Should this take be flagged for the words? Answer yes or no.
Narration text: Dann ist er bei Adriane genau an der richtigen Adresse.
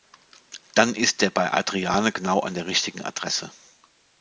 no